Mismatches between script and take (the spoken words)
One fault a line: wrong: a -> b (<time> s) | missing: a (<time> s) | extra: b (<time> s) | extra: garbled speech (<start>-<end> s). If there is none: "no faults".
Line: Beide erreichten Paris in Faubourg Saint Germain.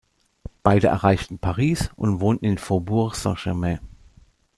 extra: und wohnten (2.0 s)